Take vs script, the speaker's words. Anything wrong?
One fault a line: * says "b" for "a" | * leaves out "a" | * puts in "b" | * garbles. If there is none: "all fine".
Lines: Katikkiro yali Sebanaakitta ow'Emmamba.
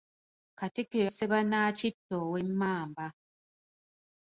* leaves out "yali"